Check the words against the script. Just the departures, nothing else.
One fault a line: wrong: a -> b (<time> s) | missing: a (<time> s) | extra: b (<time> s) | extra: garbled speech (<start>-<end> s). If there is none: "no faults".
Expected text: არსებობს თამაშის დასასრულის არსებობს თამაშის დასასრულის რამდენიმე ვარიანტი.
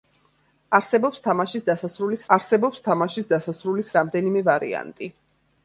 no faults